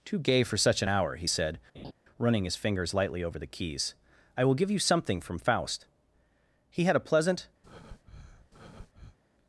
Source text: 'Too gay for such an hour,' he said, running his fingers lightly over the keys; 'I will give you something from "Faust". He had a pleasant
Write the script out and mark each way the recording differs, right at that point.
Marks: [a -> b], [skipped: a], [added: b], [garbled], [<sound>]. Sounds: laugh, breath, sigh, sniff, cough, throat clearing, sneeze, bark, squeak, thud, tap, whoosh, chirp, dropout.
'Too gay for such an hour,' he said, [laugh] running his fingers lightly over the keys; 'I will give you something from "Faust". He had a pleasant [breath]